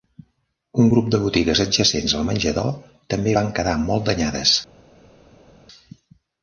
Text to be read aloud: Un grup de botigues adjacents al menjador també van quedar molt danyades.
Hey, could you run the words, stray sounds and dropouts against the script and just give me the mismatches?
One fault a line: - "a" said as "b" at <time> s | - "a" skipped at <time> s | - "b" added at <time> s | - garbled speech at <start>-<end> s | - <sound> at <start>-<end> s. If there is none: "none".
none